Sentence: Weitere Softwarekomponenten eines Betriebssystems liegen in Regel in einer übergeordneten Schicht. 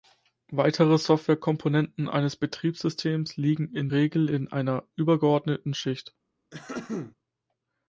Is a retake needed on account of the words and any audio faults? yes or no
yes